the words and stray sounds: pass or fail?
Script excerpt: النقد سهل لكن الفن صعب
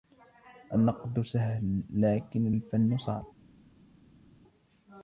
pass